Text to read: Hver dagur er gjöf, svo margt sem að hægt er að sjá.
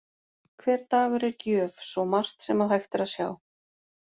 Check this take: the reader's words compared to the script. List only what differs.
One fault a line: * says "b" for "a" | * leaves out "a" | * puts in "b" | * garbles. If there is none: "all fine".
all fine